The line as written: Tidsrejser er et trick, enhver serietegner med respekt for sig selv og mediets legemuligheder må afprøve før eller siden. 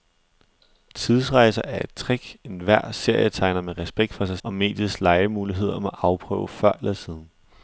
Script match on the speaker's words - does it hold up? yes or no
no